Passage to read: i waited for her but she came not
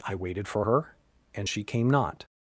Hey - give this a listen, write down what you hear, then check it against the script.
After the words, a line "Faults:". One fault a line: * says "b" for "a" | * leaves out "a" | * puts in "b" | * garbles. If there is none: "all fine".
i waited for her and she came not
Faults:
* says "and" for "but"